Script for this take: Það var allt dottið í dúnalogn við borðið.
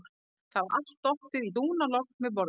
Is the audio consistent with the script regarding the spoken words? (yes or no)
yes